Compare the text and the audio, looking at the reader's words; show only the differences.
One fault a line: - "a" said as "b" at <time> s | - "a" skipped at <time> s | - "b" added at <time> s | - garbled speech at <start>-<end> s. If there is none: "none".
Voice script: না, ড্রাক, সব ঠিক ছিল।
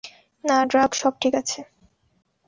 - "ছিল" said as "আছে" at 1.3 s